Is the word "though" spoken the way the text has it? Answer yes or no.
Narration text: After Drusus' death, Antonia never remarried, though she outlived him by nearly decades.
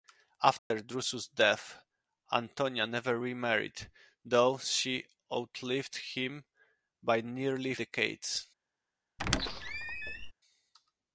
yes